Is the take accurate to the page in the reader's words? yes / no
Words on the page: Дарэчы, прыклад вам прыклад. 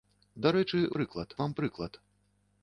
yes